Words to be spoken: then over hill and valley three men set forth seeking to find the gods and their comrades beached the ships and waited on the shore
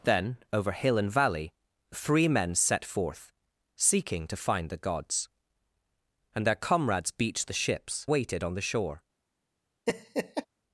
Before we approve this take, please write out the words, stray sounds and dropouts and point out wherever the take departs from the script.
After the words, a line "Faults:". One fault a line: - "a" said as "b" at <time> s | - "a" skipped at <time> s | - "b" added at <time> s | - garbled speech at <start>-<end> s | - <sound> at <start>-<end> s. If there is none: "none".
then over hill and valley three men set forth seeking to find the gods and their comrades beached the ships waited on the shore
Faults:
- "and" skipped at 8.1 s
- laugh at 9.9-10.5 s